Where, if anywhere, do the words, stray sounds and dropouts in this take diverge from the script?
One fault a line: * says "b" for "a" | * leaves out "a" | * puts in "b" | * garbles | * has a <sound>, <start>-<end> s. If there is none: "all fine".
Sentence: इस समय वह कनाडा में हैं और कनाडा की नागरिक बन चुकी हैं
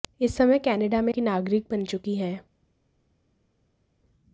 * leaves out "हैं और कनाडा"